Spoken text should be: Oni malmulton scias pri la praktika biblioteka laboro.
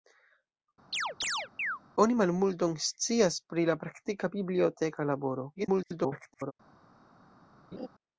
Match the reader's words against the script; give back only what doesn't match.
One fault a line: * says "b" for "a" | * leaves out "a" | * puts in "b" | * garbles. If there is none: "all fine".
* garbles